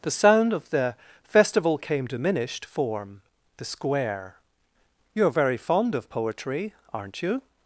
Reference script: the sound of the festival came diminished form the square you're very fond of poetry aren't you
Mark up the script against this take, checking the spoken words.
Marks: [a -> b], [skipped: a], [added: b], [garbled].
the sound of the festival came diminished form the square you're very fond of poetry aren't you